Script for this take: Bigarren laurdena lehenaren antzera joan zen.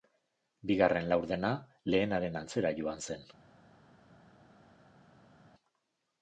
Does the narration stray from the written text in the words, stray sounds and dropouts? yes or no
no